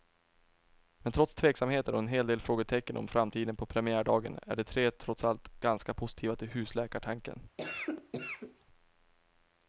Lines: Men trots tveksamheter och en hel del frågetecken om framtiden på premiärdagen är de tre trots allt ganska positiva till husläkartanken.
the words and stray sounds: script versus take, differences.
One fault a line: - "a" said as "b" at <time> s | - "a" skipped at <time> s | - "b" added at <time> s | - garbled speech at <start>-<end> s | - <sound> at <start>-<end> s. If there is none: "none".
- cough at 7.6-8.7 s